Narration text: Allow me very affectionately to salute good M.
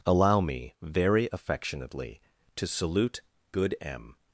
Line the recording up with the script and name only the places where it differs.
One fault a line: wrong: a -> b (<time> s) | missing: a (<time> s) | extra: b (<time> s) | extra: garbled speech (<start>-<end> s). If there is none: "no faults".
no faults